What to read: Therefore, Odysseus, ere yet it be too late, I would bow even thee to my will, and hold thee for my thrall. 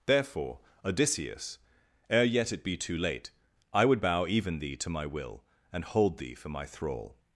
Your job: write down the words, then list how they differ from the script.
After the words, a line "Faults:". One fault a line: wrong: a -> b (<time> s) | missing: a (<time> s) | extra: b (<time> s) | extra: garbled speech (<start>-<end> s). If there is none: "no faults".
Therefore, Odysseus, ere yet it be too late, I would bow even thee to my will, and hold thee for my thrall.
Faults:
no faults